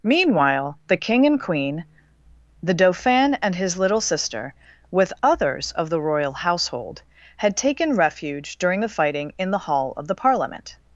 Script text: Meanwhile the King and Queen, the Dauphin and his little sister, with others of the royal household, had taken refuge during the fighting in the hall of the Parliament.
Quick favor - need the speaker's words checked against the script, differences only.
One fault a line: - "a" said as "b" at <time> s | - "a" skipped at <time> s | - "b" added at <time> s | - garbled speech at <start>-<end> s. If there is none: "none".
none